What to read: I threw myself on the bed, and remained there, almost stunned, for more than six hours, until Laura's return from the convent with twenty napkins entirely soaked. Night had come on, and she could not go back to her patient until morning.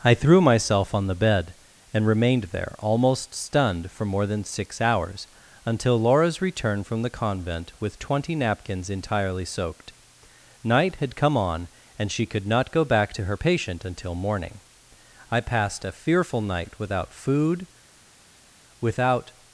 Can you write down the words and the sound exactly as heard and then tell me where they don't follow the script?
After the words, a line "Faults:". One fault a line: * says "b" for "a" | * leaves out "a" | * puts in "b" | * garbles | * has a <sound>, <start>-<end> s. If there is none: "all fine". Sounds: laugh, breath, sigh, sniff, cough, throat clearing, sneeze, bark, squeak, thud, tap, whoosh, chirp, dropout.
I threw myself on the bed, and remained there, almost stunned, for more than six hours, until Laura's return from the convent with twenty napkins entirely soaked. Night had come on, and she could not go back to her patient until morning. I passed a fearful night without food, without
Faults:
* puts in "I passed a fearful night without food without"